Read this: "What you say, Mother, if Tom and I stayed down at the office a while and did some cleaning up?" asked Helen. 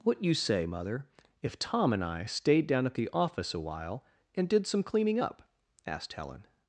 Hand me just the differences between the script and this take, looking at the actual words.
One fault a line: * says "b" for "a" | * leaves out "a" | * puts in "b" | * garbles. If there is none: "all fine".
all fine